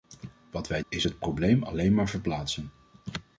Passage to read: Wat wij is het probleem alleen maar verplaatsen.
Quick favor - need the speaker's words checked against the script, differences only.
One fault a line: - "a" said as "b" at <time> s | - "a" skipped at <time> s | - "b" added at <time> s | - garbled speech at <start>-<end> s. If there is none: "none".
none